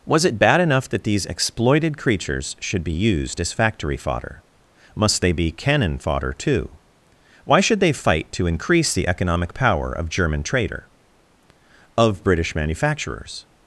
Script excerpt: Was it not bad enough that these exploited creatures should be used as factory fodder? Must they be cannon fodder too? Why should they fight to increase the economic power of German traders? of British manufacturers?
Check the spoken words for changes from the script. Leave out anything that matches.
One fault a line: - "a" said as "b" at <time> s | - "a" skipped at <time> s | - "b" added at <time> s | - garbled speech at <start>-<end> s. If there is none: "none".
- "not" skipped at 0.4 s
- "traders" said as "trader" at 10.4 s